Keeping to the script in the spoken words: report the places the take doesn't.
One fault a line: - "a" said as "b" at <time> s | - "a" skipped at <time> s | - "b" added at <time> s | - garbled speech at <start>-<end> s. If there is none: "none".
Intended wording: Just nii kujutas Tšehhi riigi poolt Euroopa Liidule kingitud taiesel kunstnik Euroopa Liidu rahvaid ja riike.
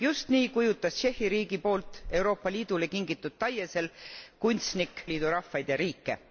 - "Euroopa" skipped at 5.0 s